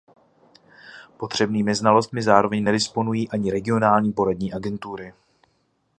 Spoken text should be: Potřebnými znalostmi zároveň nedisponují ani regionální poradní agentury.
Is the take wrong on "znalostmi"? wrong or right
right